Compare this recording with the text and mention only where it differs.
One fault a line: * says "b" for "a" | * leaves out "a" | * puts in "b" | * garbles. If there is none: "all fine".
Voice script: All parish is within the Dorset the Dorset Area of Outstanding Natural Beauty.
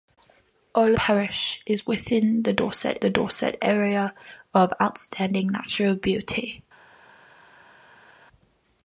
all fine